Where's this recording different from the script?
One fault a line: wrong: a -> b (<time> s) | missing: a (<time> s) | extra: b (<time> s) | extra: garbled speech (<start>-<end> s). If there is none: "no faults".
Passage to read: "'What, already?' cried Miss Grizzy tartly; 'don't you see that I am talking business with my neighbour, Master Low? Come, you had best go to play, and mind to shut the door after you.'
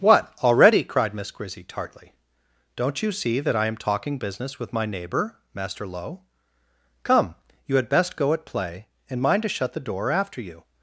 wrong: to -> at (8.3 s)